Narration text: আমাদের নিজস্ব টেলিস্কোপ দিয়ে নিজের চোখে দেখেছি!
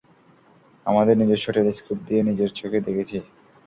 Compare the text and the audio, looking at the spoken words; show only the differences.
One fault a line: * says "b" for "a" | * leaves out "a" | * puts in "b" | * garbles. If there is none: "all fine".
all fine